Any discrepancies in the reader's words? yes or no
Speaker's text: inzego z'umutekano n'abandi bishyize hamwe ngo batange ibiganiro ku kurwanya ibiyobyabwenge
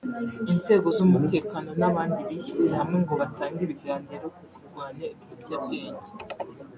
no